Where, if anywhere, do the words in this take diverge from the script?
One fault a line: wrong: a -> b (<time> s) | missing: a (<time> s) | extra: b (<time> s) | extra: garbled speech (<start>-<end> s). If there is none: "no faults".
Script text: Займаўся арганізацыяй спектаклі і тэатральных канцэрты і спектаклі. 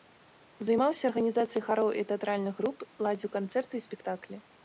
wrong: спектаклі -> хароў (1.7 s)
extra: груп ладзіў (2.6 s)